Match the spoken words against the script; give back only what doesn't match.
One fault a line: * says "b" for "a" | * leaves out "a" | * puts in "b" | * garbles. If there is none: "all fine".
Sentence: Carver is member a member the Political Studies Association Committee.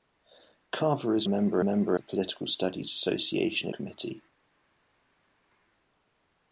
all fine